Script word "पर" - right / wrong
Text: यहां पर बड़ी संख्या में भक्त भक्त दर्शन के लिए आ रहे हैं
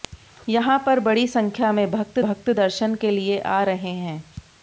right